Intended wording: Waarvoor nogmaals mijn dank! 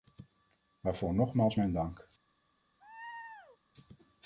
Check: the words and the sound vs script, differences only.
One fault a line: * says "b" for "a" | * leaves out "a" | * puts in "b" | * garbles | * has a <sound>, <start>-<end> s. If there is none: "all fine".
* has a laugh, 2.8-3.6 s